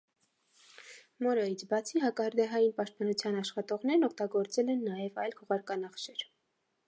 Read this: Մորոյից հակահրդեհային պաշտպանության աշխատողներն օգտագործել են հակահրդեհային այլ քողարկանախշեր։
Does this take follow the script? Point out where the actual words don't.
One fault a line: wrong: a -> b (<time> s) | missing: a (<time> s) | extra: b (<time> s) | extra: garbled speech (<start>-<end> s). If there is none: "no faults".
extra: բացի (1.7 s)
wrong: հակահրդեհային -> նաև (4.9 s)